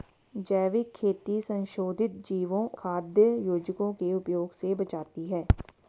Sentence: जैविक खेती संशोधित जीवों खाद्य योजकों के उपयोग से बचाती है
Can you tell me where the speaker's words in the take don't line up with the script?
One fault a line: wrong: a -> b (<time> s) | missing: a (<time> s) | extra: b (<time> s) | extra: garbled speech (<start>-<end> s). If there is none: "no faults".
no faults